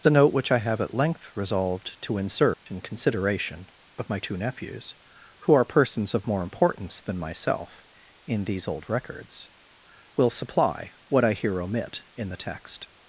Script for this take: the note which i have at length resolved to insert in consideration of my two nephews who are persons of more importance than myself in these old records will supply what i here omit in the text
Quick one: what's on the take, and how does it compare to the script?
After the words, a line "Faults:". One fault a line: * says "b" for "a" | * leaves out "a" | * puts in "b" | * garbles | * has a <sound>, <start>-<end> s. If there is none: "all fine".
the note which i have at length resolved to insert in consideration of my two nephews who are persons of more importance than myself in these old records will supply what i here omit in the text
Faults:
* has a dropout, 2.5-2.7 s